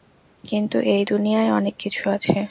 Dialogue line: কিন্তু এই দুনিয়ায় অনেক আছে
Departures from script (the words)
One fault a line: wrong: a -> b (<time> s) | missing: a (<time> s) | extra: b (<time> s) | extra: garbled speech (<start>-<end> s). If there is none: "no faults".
extra: কিছু (1.8 s)